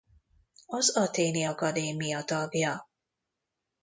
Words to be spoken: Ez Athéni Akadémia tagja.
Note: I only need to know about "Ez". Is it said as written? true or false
false